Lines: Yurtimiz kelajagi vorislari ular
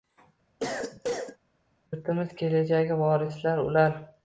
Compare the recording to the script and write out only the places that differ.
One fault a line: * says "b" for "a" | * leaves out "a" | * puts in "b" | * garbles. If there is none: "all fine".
all fine